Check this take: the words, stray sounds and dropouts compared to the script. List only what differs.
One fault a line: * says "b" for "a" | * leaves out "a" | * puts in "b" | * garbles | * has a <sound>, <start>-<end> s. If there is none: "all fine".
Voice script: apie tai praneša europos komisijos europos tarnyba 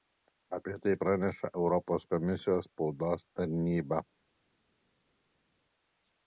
* says "spaudos" for "europos"